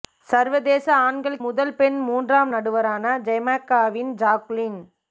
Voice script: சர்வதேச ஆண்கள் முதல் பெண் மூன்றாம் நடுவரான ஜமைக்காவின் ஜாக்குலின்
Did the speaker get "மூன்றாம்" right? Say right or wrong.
right